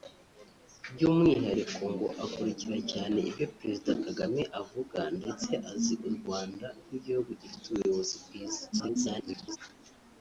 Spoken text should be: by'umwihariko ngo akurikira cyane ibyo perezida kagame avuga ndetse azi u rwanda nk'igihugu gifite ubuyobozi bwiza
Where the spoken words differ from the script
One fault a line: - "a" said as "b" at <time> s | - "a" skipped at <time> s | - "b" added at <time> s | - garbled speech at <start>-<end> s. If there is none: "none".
- garbled speech at 8.7-9.6 s